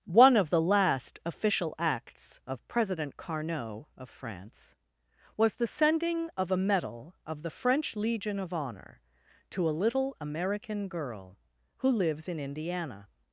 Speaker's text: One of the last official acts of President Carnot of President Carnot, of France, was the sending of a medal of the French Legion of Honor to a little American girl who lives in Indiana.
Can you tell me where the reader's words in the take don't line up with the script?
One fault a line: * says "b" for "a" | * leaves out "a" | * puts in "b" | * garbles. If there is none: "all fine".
* leaves out "President Carnot of"